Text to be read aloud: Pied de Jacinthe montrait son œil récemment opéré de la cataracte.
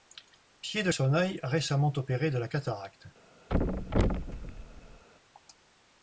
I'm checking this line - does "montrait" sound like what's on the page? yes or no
no